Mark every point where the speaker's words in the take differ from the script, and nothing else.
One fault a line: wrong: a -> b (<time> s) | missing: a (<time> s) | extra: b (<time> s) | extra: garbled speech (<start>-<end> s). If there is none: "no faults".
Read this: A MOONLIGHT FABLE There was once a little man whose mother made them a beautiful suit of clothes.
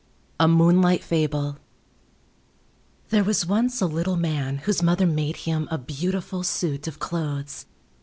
wrong: them -> him (5.4 s)